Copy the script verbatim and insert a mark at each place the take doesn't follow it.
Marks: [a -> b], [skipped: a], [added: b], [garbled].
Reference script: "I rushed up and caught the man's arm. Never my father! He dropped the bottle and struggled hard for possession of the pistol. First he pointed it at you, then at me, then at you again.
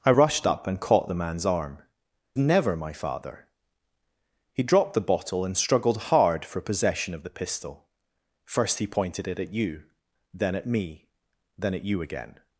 "I rushed up and caught the man's arm. Never my father! He dropped the bottle and struggled hard for possession of the pistol. First he pointed it at you, then at me, then at you again.